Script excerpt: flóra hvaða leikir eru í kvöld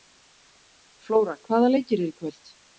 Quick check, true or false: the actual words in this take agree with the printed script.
true